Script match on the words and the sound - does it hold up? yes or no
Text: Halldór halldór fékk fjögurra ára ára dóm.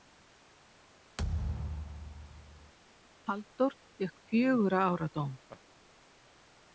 no